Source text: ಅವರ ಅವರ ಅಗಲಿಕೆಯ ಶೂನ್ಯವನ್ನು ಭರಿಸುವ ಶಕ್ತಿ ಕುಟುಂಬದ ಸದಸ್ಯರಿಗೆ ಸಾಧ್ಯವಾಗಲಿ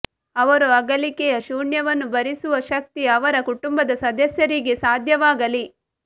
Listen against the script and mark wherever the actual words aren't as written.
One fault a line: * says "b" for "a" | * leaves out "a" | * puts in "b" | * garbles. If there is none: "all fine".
* leaves out "ಅವರ"
* puts in "ಅವರ"